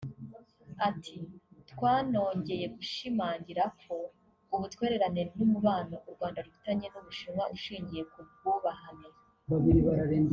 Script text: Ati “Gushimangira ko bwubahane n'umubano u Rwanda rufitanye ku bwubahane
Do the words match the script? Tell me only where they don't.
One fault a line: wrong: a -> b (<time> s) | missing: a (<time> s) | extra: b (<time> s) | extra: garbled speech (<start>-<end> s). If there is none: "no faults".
extra: Twanongeye (1.7 s)
wrong: bwubahane -> ubutwererane (4.5 s)
extra: n'u Bushinwa ushingiye (6.9 s)